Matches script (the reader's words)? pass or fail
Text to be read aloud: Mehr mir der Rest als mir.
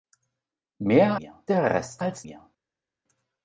pass